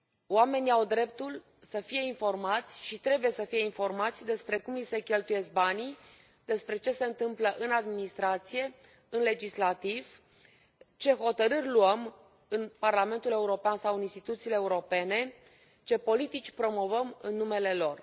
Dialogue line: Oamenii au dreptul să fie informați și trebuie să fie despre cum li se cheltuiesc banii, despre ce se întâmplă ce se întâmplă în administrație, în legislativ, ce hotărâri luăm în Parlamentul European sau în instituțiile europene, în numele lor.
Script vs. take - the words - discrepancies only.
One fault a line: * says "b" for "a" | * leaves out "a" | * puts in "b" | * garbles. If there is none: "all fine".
* puts in "informați"
* leaves out "ce se întâmplă"
* puts in "ce politici promovăm"